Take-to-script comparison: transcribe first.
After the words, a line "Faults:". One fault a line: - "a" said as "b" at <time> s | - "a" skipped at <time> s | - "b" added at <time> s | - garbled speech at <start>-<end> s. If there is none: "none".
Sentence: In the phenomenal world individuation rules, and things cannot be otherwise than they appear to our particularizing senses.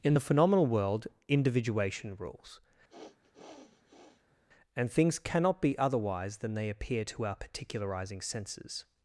In the phenomenal world individuation rules, and things cannot be otherwise than they appear to our particularizing senses.
Faults:
none